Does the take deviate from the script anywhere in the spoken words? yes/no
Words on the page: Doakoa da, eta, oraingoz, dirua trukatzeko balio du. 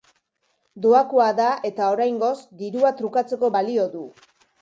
no